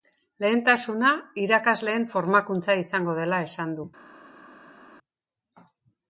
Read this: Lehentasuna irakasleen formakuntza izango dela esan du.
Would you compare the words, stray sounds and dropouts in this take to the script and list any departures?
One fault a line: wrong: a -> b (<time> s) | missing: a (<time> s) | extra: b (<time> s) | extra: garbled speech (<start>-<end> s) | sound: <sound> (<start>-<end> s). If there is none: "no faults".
no faults